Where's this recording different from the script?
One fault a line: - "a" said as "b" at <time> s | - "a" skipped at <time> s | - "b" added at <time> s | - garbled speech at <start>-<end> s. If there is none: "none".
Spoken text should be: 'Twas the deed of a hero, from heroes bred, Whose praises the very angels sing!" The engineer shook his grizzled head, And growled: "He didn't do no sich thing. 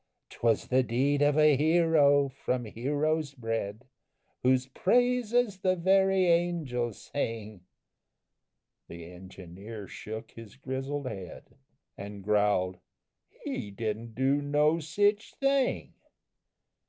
none